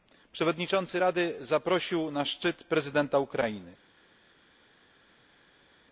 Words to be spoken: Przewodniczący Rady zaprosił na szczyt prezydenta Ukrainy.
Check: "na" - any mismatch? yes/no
no